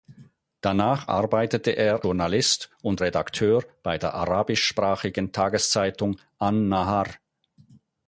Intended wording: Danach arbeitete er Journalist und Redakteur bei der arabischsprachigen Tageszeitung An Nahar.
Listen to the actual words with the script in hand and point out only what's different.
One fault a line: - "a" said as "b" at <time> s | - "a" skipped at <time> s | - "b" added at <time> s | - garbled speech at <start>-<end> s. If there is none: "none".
none